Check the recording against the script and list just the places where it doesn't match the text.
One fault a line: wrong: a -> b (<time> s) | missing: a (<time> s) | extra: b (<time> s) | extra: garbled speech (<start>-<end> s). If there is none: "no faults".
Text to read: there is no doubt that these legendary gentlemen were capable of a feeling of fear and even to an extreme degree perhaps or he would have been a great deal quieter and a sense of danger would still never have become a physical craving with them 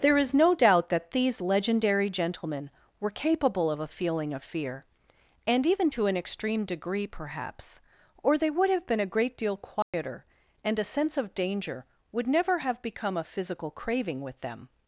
wrong: he -> they (8.4 s)
missing: still (12.3 s)